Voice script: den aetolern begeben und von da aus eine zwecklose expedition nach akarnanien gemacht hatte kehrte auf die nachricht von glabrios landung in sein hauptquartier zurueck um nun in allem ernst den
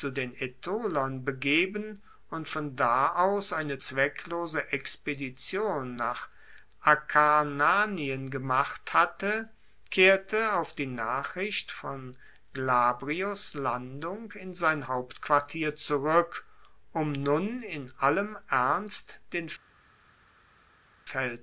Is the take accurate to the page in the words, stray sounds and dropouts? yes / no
yes